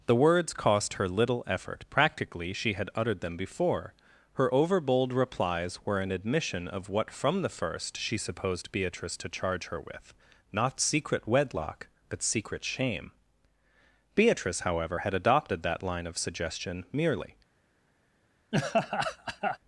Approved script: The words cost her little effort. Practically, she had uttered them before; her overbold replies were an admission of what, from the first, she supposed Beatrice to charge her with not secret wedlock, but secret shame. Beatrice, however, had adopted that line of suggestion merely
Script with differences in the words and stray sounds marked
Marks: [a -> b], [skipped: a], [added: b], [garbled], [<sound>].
The words cost her little effort. Practically, she had uttered them before; her overbold replies were an admission of what, from the first, she supposed Beatrice to charge her with not secret wedlock, but secret shame. Beatrice, however, had adopted that line of suggestion merely [laugh]